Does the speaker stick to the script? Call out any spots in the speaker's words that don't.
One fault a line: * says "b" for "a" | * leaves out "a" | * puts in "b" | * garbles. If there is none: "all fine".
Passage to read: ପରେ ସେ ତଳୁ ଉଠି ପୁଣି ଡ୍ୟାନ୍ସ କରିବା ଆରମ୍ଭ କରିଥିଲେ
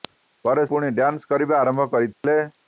* leaves out "ସେ ତଳୁ ଉଠି"